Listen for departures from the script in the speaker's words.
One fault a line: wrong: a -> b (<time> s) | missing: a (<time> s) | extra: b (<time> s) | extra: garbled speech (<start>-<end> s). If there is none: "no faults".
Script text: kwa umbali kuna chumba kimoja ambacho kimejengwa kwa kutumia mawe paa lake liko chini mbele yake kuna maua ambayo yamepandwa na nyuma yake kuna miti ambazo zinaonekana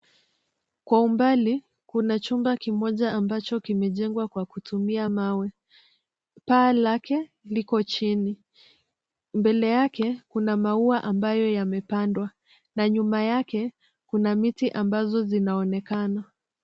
no faults